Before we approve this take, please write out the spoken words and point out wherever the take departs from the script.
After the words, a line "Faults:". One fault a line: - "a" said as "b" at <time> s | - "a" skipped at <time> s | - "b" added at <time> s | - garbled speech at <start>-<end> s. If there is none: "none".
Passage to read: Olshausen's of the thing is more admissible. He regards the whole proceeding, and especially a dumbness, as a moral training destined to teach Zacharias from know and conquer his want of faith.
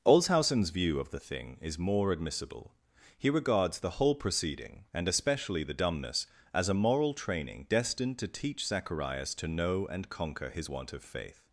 Olshausen's view of the thing is more admissible. He regards the whole proceeding, and especially the dumbness, as a moral training destined to teach Zacharias to know and conquer his want of faith.
Faults:
- "view" added at 0.7 s
- "a" said as "the" at 5.6 s
- "from" said as "to" at 9.3 s